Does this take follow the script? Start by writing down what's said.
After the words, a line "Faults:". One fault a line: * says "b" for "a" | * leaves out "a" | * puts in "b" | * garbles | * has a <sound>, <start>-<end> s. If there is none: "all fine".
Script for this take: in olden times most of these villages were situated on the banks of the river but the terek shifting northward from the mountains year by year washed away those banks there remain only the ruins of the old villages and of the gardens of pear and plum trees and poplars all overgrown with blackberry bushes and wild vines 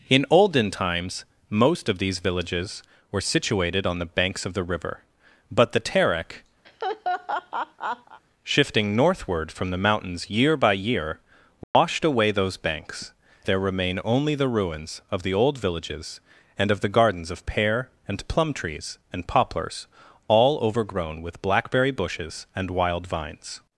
in olden times most of these villages were situated on the banks of the river but the terek shifting northward from the mountains year by year washed away those banks there remain only the ruins of the old villages and of the gardens of pear and plum trees and poplars all overgrown with blackberry bushes and wild vines
Faults:
* has a laugh, 6.6-8.2 s
* has a dropout, 11.6-11.7 s